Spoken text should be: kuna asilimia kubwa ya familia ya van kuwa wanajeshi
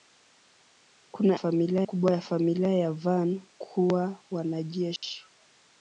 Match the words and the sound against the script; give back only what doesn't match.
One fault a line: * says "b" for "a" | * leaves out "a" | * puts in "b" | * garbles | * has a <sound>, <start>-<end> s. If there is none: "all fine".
* says "familia" for "asilimia"
* has a dropout, 5.0-5.0 s